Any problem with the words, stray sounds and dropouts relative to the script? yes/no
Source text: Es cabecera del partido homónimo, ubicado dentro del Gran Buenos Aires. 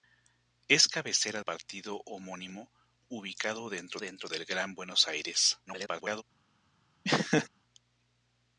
yes